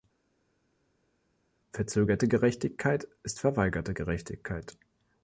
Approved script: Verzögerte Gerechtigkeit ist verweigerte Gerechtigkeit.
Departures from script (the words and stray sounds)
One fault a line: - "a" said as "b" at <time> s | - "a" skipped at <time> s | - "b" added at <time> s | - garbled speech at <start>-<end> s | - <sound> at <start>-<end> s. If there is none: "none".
none